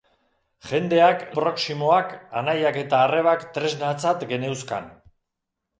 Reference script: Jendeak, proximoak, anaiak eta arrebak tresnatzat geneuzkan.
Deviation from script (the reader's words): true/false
false